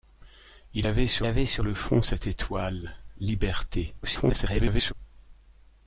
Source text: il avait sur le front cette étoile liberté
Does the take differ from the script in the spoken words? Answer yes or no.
yes